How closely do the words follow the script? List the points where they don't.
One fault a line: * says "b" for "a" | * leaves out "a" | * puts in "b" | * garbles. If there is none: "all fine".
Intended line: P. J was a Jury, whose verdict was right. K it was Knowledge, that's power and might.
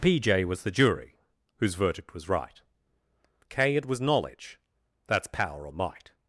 * says "the" for "a"
* says "or" for "and"